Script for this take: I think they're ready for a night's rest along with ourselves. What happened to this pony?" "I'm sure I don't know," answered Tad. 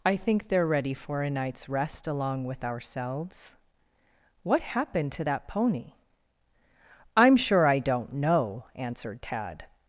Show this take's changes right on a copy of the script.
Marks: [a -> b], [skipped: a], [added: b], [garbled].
I think they're ready for a night's rest along with ourselves. What happened to [this -> that] pony?" "I'm sure I don't know," answered Tad.